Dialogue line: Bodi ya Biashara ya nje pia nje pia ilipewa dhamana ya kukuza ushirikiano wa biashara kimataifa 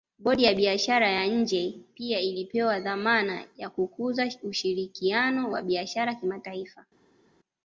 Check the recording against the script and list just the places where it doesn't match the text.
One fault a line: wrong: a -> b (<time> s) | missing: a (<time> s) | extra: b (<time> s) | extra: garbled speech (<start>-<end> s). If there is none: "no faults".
missing: nje pia (2.2 s)